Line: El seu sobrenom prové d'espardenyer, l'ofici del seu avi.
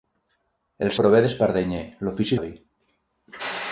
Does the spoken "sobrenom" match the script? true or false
false